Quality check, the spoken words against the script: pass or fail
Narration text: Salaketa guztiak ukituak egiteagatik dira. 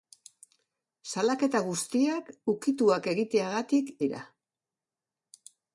pass